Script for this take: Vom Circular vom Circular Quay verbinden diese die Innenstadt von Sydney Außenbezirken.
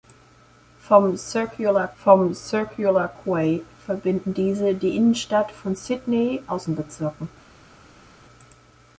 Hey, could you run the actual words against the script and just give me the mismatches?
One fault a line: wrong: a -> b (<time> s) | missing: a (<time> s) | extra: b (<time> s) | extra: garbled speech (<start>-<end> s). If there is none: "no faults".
no faults